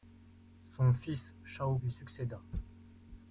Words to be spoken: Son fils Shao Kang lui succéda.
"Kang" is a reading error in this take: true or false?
true